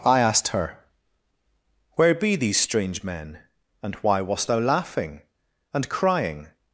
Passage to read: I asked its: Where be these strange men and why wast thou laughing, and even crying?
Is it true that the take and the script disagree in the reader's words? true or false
true